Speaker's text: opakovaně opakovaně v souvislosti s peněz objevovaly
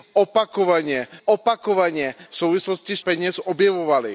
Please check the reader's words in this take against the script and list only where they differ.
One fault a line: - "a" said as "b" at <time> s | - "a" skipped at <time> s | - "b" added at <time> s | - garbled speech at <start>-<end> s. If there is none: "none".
none